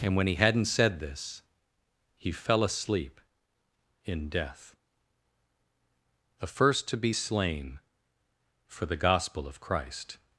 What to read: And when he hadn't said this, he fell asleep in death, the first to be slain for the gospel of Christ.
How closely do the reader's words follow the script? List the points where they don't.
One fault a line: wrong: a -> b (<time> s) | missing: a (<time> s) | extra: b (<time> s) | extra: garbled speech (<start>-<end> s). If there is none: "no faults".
no faults